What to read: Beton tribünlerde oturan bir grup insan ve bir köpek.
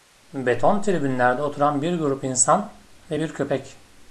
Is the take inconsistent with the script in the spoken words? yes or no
no